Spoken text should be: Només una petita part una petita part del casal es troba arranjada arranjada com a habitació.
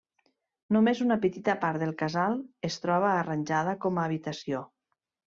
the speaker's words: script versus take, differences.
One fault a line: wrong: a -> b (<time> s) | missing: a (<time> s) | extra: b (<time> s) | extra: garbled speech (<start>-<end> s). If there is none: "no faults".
missing: una petita part (1.8 s)
missing: arranjada (3.7 s)